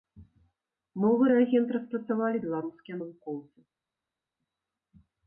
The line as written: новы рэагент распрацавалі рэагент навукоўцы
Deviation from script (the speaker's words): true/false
true